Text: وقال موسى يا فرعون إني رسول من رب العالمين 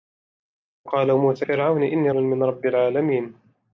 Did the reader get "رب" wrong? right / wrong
right